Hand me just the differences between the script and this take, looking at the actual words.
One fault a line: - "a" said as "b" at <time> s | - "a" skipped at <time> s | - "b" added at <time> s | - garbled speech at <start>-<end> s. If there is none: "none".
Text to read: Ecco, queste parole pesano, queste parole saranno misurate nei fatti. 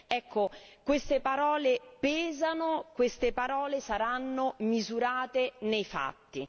none